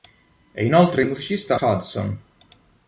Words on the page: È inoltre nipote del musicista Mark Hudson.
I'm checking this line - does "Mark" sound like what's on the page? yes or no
no